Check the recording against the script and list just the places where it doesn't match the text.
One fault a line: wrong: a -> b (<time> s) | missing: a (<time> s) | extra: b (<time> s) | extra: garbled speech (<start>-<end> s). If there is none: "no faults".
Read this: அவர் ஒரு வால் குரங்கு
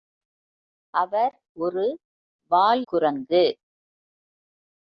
no faults